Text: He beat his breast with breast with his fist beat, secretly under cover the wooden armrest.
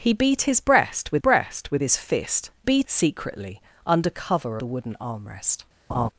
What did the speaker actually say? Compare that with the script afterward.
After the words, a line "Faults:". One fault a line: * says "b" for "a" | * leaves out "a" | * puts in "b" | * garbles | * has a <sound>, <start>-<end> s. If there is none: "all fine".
He beat his breast with breast with his fist beat, secretly under cover the wooden armrest.
Faults:
* has a laugh, 5.9-6.1 s